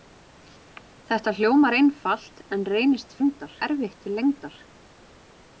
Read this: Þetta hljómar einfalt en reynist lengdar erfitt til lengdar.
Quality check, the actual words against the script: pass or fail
pass